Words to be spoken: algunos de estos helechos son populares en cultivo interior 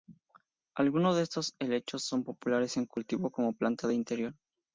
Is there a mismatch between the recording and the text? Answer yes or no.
yes